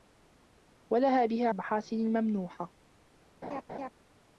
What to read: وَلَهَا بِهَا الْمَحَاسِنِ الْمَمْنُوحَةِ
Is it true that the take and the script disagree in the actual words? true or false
false